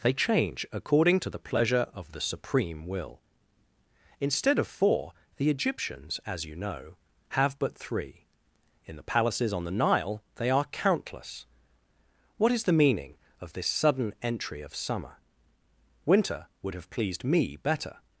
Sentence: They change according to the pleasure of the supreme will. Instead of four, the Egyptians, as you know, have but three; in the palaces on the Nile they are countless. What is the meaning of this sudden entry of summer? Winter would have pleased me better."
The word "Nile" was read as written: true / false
true